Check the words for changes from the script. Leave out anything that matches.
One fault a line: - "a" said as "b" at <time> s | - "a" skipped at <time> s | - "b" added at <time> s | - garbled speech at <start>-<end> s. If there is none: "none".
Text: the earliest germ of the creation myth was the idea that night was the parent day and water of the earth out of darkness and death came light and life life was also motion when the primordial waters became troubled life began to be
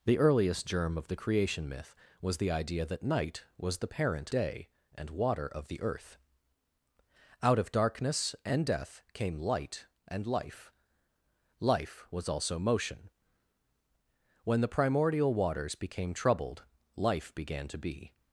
none